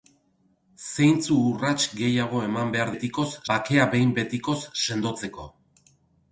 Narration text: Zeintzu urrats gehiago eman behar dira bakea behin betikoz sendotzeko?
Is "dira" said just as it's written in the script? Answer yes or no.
no